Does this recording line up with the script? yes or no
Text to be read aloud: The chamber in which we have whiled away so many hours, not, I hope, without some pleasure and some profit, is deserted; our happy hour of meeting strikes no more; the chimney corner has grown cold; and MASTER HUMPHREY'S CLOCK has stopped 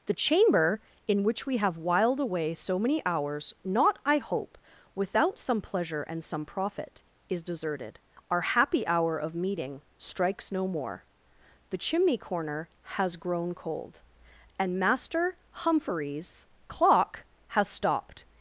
yes